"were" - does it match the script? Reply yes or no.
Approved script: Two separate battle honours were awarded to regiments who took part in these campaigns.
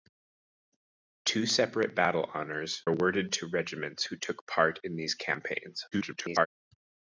no